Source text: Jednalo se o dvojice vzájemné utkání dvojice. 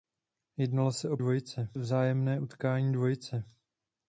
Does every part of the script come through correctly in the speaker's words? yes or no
yes